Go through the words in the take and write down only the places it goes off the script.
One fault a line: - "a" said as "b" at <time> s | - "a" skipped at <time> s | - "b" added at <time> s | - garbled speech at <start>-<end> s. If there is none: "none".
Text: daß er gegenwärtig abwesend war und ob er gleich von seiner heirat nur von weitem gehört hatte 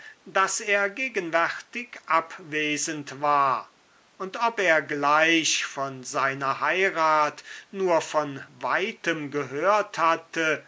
none